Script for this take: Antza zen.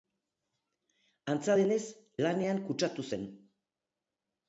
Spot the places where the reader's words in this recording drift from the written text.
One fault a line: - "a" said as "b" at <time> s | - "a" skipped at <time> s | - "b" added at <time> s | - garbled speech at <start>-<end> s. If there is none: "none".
- "denez lanean kutsatu" added at 1.6 s